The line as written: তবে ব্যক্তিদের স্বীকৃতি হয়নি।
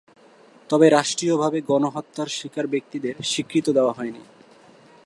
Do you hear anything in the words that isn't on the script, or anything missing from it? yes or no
yes